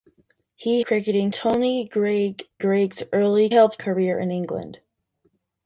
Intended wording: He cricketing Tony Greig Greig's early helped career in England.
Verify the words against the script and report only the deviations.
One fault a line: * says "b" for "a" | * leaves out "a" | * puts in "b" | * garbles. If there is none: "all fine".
all fine